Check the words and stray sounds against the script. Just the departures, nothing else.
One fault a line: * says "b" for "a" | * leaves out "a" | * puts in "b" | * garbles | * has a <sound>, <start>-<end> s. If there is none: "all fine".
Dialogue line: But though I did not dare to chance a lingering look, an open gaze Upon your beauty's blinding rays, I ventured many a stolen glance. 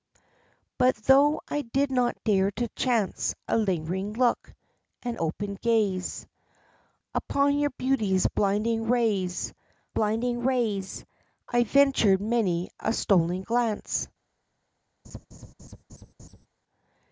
* puts in "blinding rays"
* has a laugh, 15.0-16.5 s